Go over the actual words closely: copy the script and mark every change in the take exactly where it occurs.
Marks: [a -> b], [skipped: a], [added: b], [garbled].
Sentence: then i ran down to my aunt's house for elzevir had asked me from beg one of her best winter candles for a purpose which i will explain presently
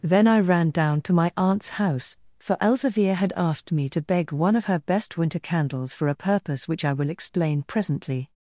then i ran down to my aunt's house for elzevir had asked me [from -> to] beg one of her best winter candles for a purpose which i will explain presently